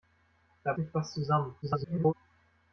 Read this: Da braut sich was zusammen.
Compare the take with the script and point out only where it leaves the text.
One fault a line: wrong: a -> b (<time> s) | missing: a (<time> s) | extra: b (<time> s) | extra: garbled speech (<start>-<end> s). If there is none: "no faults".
missing: braut (0.7 s)
extra: garbled speech (1.6-2.1 s)